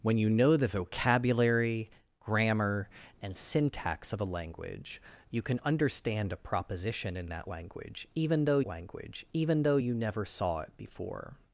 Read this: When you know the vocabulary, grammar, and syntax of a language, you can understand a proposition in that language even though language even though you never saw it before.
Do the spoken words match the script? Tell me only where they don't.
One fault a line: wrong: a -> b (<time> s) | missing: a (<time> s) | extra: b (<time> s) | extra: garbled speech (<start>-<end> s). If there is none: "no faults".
no faults